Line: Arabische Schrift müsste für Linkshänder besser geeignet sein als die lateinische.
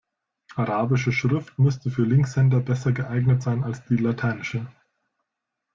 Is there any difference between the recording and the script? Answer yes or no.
no